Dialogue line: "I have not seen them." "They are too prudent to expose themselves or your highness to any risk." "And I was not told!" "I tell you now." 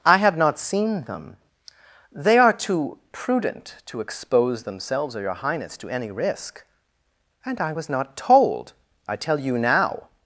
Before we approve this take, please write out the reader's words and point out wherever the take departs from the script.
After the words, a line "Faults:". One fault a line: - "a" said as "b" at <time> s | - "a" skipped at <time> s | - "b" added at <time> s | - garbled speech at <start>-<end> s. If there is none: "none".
"I have not seen them." "They are too prudent to expose themselves or your highness to any risk." "And I was not told!" "I tell you now."
Faults:
none